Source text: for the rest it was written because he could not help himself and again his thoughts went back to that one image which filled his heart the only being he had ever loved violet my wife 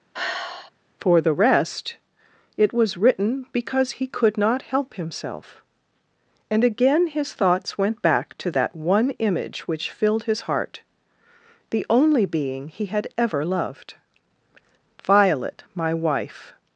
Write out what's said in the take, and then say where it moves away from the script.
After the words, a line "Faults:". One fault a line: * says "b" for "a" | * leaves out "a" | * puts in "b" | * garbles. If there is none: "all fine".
for the rest it was written because he could not help himself and again his thoughts went back to that one image which filled his heart the only being he had ever loved violet my wife
Faults:
all fine